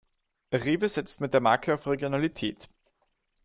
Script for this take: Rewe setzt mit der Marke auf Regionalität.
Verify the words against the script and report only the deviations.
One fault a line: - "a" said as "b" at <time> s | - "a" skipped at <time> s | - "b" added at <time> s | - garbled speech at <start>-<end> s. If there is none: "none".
none